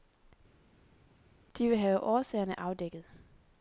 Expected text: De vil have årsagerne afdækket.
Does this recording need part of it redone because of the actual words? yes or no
no